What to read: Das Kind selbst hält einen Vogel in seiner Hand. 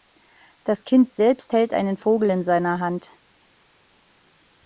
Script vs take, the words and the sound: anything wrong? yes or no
no